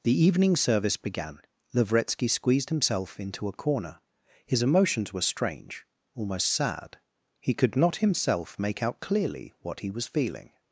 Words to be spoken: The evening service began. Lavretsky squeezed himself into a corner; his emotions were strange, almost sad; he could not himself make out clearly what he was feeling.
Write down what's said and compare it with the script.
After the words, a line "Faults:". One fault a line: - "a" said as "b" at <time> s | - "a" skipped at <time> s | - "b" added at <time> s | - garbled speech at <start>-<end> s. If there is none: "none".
The evening service began. Lavretsky squeezed himself into a corner; his emotions were strange, almost sad; he could not himself make out clearly what he was feeling.
Faults:
none